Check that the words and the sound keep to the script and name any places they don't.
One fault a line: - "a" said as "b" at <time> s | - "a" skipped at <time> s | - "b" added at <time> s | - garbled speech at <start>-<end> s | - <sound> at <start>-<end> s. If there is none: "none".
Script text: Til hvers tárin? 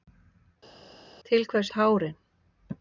none